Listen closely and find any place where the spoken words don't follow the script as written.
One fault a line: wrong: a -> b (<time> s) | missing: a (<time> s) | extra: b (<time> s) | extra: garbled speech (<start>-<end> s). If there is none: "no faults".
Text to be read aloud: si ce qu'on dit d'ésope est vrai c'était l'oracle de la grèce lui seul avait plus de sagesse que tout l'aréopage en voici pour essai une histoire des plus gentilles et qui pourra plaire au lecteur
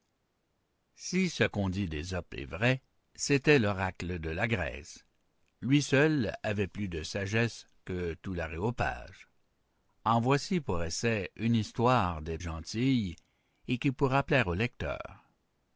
missing: plus (12.4 s)